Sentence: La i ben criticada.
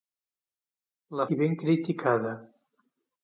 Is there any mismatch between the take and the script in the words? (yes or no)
no